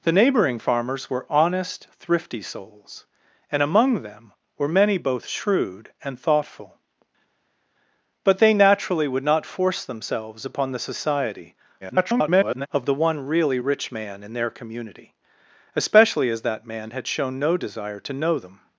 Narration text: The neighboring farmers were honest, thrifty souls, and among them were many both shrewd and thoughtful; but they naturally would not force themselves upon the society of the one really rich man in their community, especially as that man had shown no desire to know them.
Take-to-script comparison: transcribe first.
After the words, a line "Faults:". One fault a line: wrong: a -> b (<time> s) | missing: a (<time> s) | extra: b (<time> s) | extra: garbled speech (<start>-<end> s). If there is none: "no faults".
The neighboring farmers were honest, thrifty souls, and among them were many both shrewd and thoughtful; but they naturally would not force themselves upon the society [garbled] of the one really rich man in their community, especially as that man had shown no desire to know them.
Faults:
extra: garbled speech (11.8-12.7 s)